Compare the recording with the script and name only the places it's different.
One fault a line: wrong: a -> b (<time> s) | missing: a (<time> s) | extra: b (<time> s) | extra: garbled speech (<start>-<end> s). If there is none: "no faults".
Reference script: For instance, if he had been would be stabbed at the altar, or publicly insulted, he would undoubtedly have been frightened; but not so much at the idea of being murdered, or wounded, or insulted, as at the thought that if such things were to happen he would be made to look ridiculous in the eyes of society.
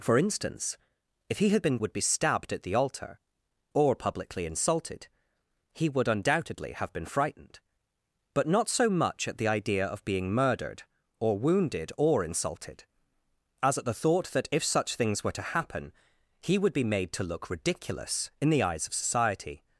no faults